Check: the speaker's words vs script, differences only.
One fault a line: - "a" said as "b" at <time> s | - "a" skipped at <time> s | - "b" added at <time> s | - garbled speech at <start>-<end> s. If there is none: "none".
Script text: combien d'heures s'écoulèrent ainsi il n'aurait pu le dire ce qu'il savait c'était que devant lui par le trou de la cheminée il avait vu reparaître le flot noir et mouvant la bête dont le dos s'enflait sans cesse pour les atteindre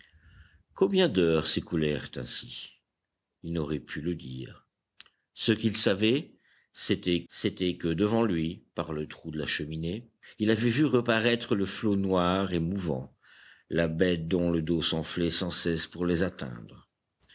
- "c'était" added at 7.3 s